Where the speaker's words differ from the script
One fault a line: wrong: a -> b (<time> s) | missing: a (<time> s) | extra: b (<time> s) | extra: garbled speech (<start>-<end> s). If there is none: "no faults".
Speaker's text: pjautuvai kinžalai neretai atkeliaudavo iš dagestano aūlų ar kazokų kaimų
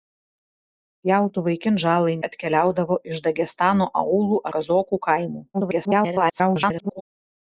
missing: neretai (2.1 s)
missing: ar (4.4 s)
extra: garbled speech (5.5-7.0 s)